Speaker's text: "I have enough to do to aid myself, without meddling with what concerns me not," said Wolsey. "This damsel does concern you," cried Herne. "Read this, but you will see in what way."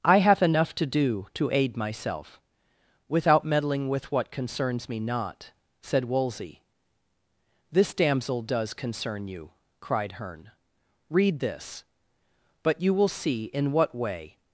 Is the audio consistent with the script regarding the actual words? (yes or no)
yes